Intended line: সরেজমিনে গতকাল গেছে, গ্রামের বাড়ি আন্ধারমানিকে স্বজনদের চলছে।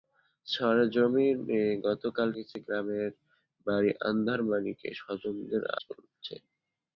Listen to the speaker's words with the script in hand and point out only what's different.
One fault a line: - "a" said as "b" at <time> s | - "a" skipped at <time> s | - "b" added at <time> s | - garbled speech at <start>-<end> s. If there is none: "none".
none